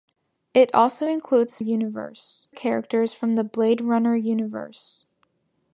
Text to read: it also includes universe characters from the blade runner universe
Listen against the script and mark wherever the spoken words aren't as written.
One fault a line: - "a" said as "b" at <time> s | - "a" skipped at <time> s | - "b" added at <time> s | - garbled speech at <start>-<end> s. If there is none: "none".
none